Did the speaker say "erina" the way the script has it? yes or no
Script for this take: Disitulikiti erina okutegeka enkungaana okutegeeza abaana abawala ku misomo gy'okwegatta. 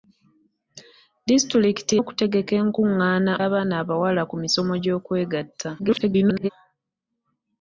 no